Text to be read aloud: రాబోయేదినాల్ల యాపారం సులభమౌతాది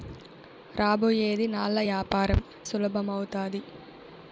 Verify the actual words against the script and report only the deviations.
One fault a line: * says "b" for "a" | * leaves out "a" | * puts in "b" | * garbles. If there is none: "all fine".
all fine